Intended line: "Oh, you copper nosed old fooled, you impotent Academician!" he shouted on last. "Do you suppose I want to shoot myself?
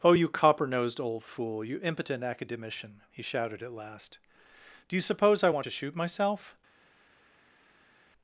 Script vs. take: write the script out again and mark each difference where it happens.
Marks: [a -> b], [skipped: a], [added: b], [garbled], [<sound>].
"Oh, you copper nosed old [fooled, -> fool] you impotent Academician!" he shouted [on -> at] last. "Do you suppose I want to shoot myself?